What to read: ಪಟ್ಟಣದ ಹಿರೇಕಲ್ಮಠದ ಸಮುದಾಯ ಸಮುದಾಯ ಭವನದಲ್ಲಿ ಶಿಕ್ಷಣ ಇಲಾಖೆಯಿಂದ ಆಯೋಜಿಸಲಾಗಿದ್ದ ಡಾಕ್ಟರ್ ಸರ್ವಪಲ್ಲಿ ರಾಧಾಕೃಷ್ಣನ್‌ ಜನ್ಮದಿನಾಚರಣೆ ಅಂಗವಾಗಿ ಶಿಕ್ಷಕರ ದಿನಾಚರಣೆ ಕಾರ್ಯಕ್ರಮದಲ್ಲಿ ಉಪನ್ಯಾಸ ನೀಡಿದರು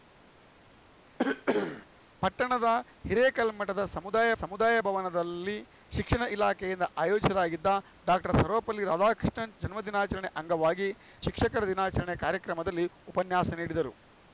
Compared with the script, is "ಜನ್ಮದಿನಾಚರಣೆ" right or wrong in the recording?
right